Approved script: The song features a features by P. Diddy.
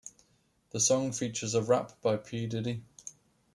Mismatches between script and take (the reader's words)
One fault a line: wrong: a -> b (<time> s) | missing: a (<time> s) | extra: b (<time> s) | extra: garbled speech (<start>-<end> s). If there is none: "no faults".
wrong: features -> rap (1.6 s)